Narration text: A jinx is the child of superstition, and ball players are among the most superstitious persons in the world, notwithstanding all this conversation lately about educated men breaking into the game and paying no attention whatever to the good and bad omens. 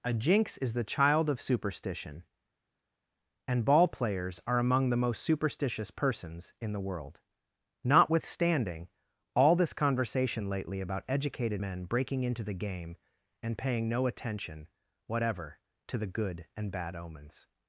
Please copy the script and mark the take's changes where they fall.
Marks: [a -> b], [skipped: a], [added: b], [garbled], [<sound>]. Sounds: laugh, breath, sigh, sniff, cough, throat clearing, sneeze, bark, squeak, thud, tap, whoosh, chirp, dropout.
A jinx is the child of superstition, and ball players are among the most superstitious persons in the world, notwithstanding all this conversation lately about educated men breaking into the game and paying no attention whatever to the good and bad omens.